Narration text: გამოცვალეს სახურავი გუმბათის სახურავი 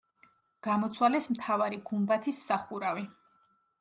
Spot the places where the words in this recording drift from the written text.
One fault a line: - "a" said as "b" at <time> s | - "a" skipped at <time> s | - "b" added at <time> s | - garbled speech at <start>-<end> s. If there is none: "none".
- "სახურავი" said as "მთავარი" at 1.4 s